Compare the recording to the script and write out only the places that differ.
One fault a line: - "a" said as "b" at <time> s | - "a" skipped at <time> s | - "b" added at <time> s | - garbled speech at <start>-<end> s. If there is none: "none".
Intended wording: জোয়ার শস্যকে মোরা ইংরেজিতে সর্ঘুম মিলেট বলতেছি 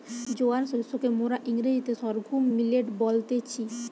none